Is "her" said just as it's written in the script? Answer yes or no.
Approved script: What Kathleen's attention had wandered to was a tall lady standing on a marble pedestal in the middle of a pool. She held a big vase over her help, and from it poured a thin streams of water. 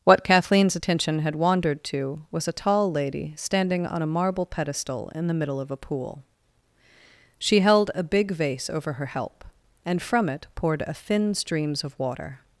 yes